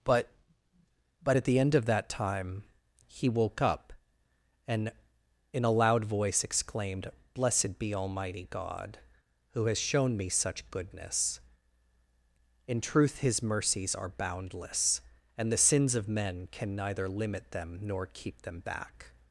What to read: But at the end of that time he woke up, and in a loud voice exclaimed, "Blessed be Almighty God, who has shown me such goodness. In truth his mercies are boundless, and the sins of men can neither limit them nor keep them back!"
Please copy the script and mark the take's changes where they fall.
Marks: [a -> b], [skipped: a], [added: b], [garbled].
But [added: but] at the end of that time he woke up, and in a loud voice exclaimed, "Blessed be Almighty God, who has shown me such goodness. In truth his mercies are boundless, and the sins of men can neither limit them nor keep them back!"